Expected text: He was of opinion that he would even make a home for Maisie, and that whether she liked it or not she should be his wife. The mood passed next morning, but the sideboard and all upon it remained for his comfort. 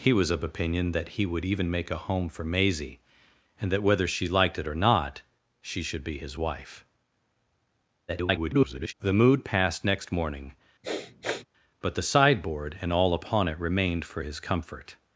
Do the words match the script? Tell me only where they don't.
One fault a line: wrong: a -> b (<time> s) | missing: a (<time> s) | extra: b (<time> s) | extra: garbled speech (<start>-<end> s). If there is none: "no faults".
extra: garbled speech (8.1-8.9 s)